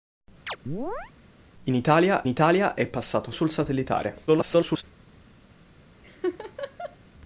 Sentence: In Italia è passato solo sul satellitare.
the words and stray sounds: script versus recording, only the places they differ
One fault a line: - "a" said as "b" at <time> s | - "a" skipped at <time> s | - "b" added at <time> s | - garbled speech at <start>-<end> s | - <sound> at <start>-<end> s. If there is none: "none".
- chirp at 0.5-1.1 s
- "Italia" added at 2.3 s
- "solo" skipped at 3.3 s
- garbled speech at 4.3-4.8 s
- laugh at 6.0-7.0 s